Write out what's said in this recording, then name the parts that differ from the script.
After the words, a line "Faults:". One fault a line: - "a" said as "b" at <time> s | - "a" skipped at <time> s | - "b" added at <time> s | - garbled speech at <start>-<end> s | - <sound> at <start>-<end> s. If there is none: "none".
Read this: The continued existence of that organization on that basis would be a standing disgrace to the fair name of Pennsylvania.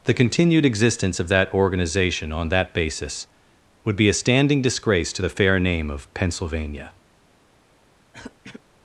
The continued existence of that organization on that basis would be a standing disgrace to the fair name of Pennsylvania.
Faults:
- throat clearing at 8.1-8.6 s